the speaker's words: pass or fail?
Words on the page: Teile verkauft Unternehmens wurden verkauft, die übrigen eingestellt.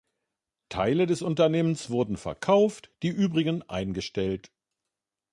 fail